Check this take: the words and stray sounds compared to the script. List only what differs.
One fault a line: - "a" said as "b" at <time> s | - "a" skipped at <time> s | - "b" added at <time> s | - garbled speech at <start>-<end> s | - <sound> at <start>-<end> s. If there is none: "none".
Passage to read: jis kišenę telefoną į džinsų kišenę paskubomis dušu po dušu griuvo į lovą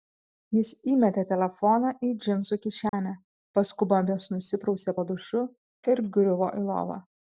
- "kišenę" said as "įmetė" at 0.9 s
- dropout at 2.9-2.9 s
- "dušu" said as "nusiprausė" at 4.3 s
- "ir" added at 5.9 s